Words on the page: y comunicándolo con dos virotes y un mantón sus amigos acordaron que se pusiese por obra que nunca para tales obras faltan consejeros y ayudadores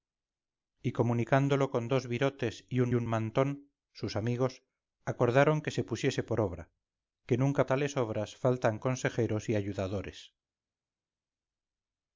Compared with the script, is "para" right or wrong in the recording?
wrong